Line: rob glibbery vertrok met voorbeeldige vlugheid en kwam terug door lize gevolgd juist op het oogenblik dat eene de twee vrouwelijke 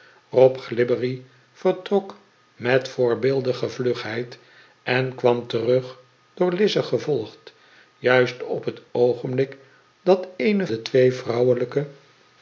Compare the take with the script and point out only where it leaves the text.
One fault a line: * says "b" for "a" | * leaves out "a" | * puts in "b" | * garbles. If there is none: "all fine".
all fine